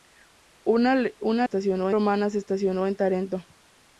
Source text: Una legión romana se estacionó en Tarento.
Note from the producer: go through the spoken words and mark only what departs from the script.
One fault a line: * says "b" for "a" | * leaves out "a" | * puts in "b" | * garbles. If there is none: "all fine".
* says "estacionó" for "legión"